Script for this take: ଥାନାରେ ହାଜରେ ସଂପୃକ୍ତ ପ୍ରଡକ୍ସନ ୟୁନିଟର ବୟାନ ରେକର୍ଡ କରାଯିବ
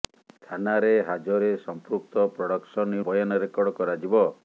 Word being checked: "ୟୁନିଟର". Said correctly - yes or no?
no